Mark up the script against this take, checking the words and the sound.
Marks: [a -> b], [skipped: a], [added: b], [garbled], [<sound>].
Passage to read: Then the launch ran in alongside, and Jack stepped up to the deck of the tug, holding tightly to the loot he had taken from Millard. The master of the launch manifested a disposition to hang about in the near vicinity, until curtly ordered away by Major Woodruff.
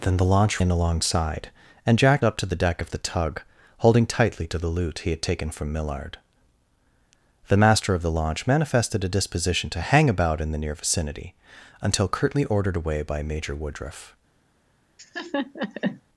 Then the launch [skipped: ran] in alongside, and Jack [skipped: stepped] up to the deck of the tug, holding tightly to the loot he had taken from Millard. The master of the launch manifested a disposition to hang about in the near vicinity, until curtly ordered away by Major Woodruff. [laugh]